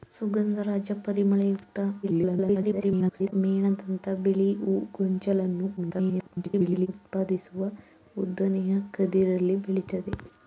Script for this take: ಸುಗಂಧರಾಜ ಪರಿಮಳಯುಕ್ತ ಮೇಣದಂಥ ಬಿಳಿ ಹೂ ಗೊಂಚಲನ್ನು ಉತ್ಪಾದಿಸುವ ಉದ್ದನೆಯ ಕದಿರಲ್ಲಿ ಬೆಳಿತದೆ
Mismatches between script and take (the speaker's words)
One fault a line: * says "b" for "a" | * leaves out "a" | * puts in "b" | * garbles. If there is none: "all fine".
* garbles
* garbles